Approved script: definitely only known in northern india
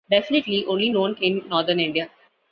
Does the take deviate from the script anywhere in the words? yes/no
no